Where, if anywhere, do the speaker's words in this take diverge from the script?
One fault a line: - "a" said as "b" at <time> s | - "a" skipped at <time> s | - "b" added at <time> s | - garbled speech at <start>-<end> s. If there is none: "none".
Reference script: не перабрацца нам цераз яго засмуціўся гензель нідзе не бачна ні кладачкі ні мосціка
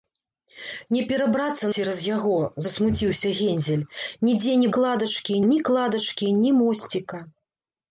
- "нам" skipped at 1.6 s
- "бачна" said as "кладачкі" at 4.8 s